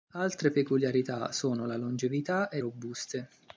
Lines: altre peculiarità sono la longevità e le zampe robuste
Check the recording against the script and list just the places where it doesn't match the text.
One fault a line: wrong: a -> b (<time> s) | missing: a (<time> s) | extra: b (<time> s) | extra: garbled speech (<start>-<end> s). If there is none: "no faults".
missing: le zampe (2.6 s)